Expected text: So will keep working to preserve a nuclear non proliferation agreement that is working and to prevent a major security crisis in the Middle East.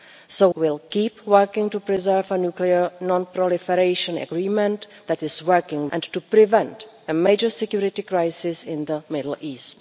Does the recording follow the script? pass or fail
pass